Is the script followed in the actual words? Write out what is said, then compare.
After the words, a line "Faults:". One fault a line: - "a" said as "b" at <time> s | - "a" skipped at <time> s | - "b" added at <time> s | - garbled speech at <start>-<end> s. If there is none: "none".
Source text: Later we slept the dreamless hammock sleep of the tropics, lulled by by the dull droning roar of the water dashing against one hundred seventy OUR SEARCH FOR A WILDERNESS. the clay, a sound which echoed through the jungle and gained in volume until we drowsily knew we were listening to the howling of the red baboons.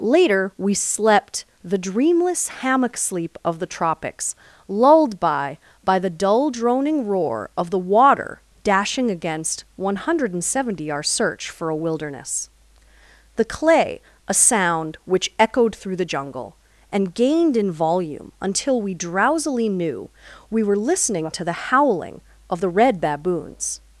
Later we slept the dreamless hammock sleep of the tropics, lulled by by the dull droning roar of the water dashing against one hundred seventy OUR SEARCH FOR A WILDERNESS. the clay, a sound which echoed through the jungle and gained in volume until we drowsily knew we were listening to the howling of the red baboons.
Faults:
none